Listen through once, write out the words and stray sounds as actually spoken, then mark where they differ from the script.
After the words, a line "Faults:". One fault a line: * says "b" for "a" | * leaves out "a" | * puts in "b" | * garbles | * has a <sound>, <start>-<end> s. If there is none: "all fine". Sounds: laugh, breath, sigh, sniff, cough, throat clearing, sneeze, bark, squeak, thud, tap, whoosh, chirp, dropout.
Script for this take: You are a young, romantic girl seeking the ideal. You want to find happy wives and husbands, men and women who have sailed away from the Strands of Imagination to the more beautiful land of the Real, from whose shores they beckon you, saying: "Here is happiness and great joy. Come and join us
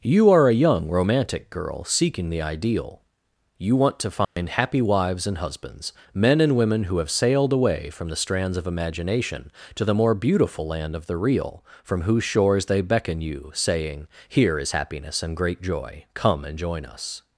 You are a young, romantic girl seeking the ideal. You want to find happy wives and husbands, men and women who have sailed away from the Strands of Imagination to the more beautiful land of the Real, from whose shores they beckon you, saying: "Here is happiness and great joy. Come and join us
Faults:
* has a dropout, 4.2-4.4 s